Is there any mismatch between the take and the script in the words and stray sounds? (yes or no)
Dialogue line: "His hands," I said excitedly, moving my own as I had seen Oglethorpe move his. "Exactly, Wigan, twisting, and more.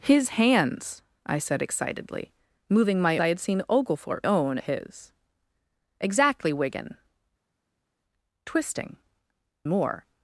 yes